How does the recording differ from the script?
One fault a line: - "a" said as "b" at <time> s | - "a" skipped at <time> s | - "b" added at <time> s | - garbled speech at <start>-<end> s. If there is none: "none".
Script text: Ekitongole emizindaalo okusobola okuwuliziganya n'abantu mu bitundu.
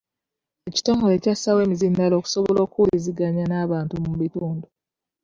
- "kyassaawo" added at 1.2 s